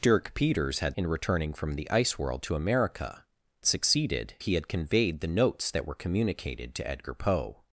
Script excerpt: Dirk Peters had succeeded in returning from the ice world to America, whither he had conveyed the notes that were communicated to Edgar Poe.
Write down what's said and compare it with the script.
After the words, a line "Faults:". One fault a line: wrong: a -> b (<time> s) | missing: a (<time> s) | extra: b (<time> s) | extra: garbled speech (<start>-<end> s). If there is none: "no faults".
Dirk Peters had in returning from the ice world to America, succeeded he had conveyed the notes that were communicated to Edgar Poe.
Faults:
missing: succeeded (1.0 s)
wrong: whither -> succeeded (3.6 s)